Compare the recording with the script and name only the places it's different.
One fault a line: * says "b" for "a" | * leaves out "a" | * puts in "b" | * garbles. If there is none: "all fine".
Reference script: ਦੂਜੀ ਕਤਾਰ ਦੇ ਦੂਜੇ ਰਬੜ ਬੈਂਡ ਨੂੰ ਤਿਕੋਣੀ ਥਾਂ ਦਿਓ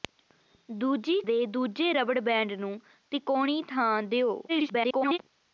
* leaves out "ਕਤਾਰ"
* garbles